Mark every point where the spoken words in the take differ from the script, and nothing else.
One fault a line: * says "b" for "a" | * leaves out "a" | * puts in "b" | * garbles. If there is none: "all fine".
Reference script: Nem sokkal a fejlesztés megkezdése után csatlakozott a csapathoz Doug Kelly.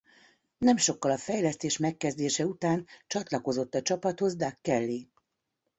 all fine